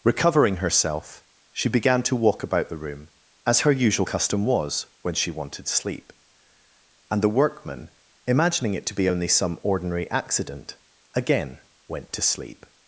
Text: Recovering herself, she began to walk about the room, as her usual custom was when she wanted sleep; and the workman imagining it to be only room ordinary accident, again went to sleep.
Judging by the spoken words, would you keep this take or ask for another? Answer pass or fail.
fail